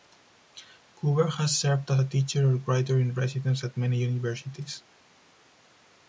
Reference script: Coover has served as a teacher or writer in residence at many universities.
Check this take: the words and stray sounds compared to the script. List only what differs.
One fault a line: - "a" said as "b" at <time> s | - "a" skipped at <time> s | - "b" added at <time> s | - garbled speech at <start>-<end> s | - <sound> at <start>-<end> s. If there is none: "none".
none